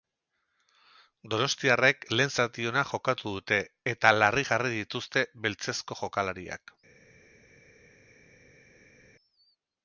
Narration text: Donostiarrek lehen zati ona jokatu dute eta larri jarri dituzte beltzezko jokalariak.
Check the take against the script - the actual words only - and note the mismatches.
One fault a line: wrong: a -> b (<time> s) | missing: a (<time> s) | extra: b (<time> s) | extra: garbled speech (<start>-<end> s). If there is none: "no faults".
no faults